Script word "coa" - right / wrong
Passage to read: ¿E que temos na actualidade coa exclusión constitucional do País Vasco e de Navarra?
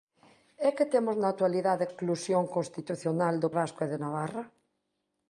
wrong